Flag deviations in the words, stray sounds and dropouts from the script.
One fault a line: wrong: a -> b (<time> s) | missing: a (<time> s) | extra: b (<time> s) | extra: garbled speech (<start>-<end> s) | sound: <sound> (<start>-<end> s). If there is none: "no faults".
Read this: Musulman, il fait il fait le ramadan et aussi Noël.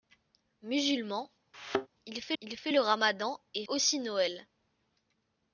sound: thud (1.5-1.9 s)